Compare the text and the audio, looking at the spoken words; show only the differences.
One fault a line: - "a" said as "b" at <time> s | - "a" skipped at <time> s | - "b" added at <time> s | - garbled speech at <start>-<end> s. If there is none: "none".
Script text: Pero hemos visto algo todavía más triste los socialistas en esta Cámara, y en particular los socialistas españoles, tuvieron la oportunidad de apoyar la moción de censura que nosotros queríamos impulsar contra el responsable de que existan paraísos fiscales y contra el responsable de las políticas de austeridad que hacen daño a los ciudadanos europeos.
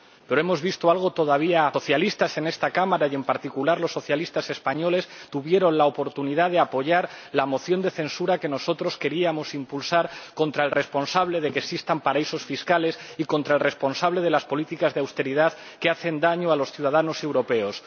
- "más triste los" skipped at 1.7 s